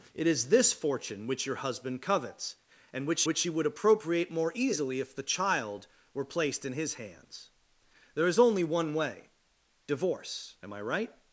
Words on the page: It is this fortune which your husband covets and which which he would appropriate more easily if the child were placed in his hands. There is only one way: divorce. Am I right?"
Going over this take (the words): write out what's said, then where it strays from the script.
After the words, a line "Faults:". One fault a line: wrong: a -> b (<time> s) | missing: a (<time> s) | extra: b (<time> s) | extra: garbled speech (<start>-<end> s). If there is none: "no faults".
It is this fortune which your husband covets and which which he would appropriate more easily if the child were placed in his hands. There is only one way: divorce. Am I right?"
Faults:
no faults